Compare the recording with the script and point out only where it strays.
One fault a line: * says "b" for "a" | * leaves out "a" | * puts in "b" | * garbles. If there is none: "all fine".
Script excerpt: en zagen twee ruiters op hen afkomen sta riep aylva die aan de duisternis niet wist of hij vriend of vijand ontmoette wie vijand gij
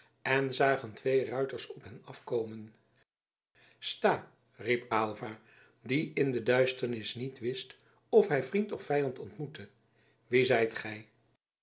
* says "in" for "aan"
* says "zijt" for "vijand"